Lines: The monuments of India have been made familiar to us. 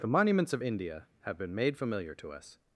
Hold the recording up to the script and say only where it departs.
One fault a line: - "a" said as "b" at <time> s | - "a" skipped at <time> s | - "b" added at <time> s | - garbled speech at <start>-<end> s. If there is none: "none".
none